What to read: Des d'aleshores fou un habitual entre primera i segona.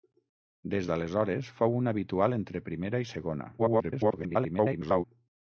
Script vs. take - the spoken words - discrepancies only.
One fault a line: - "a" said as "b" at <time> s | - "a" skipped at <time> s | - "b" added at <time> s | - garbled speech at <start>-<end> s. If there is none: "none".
- garbled speech at 3.6-5.0 s